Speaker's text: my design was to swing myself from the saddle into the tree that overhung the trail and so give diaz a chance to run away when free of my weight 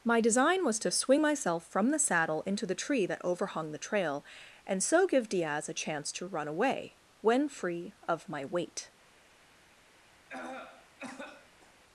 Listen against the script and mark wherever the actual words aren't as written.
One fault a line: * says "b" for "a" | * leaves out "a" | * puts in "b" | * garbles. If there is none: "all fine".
all fine